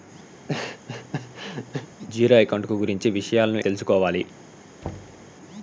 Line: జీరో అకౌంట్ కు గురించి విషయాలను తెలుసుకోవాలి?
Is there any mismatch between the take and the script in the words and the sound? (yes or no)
yes